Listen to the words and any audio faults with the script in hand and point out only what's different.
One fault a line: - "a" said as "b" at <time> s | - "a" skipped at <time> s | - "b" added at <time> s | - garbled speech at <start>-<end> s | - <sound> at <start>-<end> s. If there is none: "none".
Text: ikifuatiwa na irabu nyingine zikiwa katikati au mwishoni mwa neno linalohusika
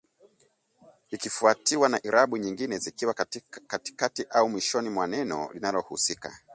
none